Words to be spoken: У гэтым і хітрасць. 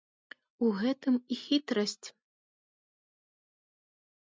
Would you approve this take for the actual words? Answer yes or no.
yes